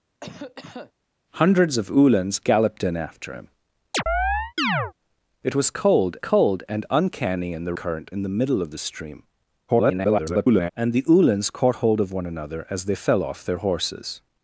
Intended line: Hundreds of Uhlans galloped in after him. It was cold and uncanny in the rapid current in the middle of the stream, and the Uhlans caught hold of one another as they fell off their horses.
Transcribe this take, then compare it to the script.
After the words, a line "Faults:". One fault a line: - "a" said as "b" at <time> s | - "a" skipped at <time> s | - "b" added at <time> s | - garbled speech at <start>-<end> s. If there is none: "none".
Hundreds of Uhlans galloped in after him. It was cold cold and uncanny in the current in the middle of the stream, [garbled] and the Uhlans caught hold of one another as they fell off their horses.
Faults:
- "cold" added at 6.2 s
- "rapid" skipped at 7.7 s
- garbled speech at 9.7-10.7 s